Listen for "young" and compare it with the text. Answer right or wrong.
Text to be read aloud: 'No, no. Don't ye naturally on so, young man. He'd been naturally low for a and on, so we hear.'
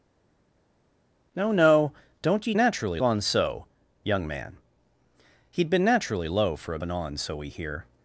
right